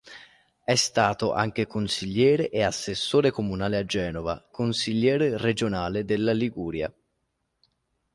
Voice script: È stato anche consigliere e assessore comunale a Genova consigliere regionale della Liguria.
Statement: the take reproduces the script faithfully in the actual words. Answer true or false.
true